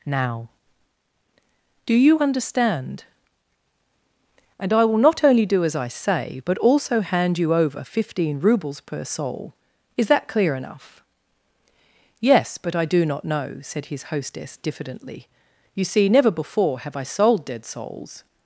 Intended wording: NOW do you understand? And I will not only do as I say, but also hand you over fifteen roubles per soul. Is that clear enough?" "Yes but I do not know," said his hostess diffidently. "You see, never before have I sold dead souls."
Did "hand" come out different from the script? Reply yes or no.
no